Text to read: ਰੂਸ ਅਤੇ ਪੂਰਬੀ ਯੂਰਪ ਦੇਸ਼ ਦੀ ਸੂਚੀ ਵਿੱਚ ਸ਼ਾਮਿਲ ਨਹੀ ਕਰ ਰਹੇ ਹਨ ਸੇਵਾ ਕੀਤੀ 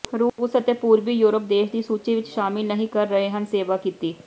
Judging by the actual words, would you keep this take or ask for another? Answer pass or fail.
pass